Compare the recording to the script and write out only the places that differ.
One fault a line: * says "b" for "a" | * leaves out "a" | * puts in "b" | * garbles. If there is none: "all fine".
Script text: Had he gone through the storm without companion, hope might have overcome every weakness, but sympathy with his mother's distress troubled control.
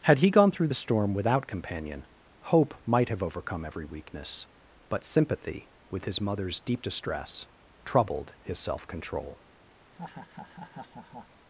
* puts in "deep"
* puts in "his self"